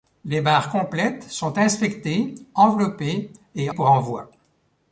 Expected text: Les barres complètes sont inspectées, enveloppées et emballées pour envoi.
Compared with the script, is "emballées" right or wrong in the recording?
wrong